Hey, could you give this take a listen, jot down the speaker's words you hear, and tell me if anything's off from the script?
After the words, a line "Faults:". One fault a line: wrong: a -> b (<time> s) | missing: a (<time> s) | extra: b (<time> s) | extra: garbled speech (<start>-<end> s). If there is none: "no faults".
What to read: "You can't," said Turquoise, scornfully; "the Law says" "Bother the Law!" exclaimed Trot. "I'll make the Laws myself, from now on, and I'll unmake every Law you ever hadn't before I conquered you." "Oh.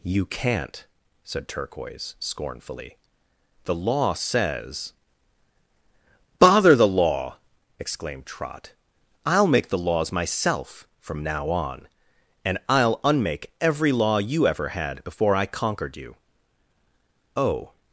"You can't," said Turquoise, scornfully; "the Law says" "Bother the Law!" exclaimed Trot. "I'll make the Laws myself, from now on, and I'll unmake every Law you ever had before I conquered you." "Oh.
Faults:
wrong: hadn't -> had (14.7 s)